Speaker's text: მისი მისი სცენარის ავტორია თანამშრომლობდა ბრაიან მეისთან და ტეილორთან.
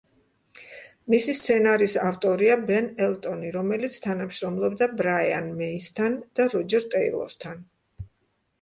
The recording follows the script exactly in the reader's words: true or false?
false